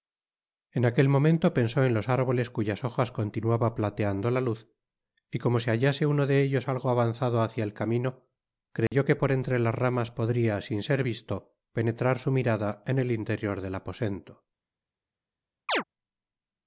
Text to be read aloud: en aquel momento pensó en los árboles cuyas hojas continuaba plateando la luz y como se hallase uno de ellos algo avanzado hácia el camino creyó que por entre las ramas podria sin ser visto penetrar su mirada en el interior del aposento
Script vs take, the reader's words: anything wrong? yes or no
no